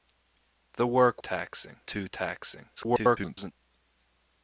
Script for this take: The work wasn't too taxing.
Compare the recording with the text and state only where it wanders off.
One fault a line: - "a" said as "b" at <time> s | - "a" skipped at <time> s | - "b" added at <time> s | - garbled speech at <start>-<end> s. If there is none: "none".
- "wasn't" said as "taxing" at 1.2 s
- garbled speech at 2.8-3.5 s